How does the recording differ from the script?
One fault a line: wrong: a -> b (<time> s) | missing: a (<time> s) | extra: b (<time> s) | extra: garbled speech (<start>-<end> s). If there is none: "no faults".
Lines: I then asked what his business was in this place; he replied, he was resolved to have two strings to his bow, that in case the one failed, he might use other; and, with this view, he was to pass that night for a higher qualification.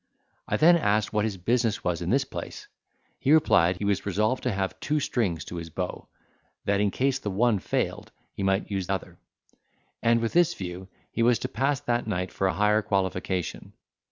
no faults